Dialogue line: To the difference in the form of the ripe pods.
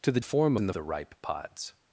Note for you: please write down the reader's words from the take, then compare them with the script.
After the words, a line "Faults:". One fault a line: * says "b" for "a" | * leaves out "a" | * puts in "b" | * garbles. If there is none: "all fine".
To the form in the the ripe pods.
Faults:
* says "form" for "difference"
* leaves out "form of"